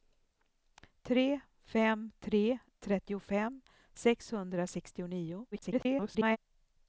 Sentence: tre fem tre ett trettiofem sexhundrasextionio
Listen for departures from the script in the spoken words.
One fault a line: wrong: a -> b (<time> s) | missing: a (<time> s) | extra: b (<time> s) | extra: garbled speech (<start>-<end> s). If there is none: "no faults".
missing: ett (2.6 s)
extra: garbled speech (5.5-6.4 s)